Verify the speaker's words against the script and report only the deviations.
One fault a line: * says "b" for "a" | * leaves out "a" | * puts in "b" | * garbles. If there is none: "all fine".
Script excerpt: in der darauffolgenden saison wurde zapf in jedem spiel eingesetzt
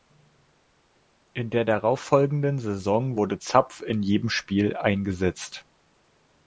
all fine